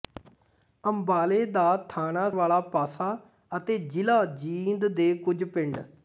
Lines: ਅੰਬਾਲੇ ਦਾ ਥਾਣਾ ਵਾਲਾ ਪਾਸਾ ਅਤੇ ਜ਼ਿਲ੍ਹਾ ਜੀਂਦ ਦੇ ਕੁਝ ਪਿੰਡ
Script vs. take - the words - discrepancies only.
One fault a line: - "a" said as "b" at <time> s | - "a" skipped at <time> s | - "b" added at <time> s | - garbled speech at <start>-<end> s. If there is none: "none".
none